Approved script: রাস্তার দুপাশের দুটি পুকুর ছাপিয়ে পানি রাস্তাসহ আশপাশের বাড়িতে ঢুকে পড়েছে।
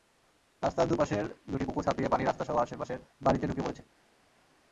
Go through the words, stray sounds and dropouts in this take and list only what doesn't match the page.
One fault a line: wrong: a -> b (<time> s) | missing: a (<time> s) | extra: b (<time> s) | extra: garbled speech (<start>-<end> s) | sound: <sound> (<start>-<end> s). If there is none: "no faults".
no faults